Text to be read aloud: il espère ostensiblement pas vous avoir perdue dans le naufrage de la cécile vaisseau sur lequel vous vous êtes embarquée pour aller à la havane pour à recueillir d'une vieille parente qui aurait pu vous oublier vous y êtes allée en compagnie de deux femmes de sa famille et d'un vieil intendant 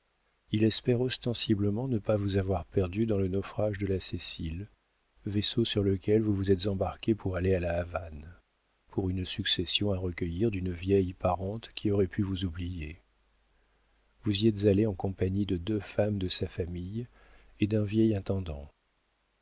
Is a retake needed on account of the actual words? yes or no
yes